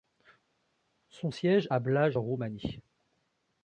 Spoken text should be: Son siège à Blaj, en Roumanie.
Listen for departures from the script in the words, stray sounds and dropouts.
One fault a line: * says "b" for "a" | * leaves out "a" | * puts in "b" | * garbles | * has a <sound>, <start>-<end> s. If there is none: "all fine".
all fine